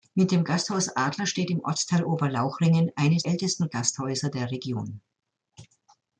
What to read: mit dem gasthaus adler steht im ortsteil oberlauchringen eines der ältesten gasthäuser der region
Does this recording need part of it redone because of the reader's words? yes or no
yes